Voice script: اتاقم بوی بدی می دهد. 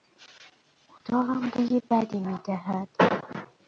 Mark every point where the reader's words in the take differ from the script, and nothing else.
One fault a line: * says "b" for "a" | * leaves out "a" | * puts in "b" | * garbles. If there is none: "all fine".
all fine